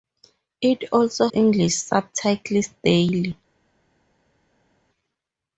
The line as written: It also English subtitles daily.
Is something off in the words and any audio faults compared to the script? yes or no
no